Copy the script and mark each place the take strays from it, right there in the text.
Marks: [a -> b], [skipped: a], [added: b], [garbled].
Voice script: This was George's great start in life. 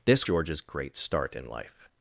This [skipped: was] George's great start in life.